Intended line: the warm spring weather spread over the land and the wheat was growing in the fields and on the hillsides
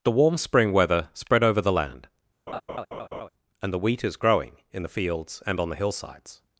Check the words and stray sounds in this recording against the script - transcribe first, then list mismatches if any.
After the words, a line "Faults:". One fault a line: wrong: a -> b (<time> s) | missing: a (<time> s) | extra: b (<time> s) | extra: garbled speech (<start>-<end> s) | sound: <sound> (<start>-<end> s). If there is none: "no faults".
the warm spring weather spread over the land and the wheat is growing in the fields and on the hillsides
Faults:
sound: laugh (2.5-3.3 s)
wrong: was -> is (4.0 s)